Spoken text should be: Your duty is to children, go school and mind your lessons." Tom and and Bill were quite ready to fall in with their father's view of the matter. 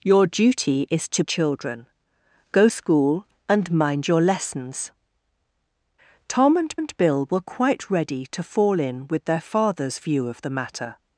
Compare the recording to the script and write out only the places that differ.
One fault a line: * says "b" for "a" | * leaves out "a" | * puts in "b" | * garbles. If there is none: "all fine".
all fine